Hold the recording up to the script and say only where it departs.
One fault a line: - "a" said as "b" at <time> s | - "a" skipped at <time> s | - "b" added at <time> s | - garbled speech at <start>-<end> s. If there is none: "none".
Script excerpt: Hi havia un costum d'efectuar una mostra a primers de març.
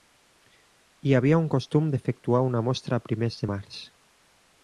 none